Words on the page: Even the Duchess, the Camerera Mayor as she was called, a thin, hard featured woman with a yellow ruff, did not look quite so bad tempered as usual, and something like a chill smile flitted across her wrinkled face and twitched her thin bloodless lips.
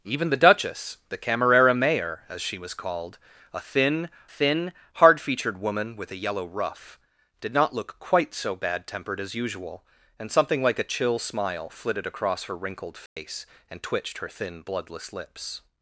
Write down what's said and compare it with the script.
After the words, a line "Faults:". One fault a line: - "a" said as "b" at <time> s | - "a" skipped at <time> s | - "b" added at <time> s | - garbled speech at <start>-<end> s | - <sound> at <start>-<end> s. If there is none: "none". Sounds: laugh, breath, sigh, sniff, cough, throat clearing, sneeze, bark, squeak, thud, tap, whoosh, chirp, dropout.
Even the Duchess, the Camerera Mayor as she was called, a thin thin, hard featured woman with a yellow ruff, did not look quite so bad tempered as usual, and something like a chill smile flitted across her wrinkled face and twitched her thin bloodless lips.
Faults:
- "thin" added at 4.3 s
- dropout at 13.1-13.2 s